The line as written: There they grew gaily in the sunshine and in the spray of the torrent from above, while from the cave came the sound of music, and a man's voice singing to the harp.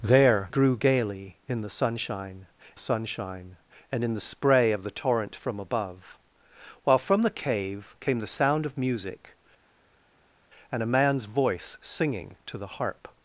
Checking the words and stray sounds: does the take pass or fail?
fail